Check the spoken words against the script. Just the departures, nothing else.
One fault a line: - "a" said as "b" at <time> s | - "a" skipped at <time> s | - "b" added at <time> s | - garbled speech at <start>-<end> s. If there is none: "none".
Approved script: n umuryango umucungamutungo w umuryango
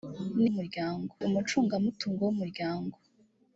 none